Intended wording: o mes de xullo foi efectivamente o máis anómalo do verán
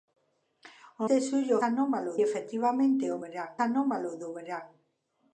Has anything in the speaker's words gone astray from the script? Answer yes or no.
yes